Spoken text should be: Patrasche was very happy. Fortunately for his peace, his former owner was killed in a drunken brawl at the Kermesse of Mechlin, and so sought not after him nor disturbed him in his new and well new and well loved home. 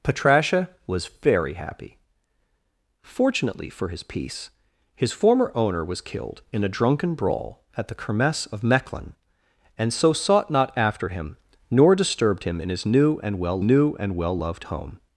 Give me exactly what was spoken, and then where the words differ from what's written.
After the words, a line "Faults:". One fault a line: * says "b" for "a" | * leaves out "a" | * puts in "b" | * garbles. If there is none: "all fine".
Patrasche was very happy. Fortunately for his peace, his former owner was killed in a drunken brawl at the Kermesse of Mechlin, and so sought not after him nor disturbed him in his new and well new and well loved home.
Faults:
all fine